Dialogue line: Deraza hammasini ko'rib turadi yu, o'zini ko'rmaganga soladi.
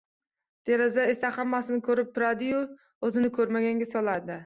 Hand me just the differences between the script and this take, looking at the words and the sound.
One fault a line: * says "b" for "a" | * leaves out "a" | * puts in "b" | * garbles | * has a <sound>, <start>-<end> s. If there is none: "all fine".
* puts in "esa"